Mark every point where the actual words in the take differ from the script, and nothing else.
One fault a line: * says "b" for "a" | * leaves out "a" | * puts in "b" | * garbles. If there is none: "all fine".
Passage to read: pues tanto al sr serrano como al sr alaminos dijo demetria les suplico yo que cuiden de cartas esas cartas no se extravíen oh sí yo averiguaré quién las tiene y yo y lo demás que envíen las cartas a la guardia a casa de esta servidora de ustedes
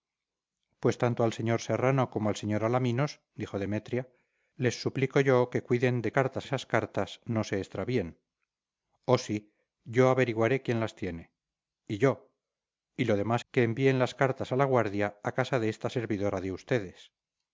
all fine